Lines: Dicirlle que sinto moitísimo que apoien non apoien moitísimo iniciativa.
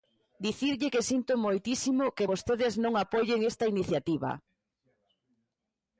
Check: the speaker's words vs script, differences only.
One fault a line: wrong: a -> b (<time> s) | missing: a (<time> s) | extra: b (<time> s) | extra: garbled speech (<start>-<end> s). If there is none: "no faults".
wrong: apoien -> vostedes (2.3 s)
wrong: moitísimo -> esta (3.5 s)